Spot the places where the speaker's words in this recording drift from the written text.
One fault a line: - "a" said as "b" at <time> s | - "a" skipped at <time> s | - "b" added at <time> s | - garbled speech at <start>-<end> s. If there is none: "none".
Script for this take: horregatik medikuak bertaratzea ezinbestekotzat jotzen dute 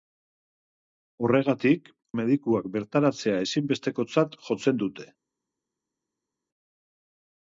none